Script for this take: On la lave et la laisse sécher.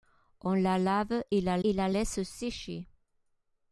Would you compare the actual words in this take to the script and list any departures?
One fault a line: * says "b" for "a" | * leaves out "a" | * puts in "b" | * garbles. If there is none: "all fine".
* puts in "et la"